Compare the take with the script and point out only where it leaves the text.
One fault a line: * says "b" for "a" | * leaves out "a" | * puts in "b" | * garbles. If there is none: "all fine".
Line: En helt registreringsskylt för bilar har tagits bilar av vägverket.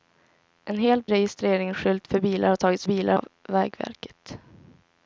all fine